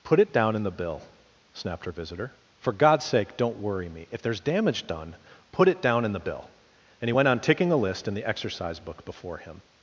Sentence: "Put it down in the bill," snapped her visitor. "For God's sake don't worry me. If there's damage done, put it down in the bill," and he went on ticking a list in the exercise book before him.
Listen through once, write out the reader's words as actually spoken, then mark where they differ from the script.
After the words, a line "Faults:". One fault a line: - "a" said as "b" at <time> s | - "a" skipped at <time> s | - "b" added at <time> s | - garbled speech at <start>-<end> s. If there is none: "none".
"Put it down in the bill," snapped her visitor. "For God's sake don't worry me. If there's damage done, put it down in the bill," and he went on ticking a list in the exercise book before him.
Faults:
none